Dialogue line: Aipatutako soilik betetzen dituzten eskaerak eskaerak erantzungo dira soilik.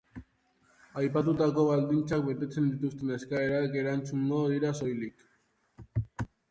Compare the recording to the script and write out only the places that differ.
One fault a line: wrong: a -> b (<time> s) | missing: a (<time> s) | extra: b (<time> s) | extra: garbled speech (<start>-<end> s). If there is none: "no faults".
wrong: soilik -> baldintzak (1.7 s)
missing: eskaerak (3.8 s)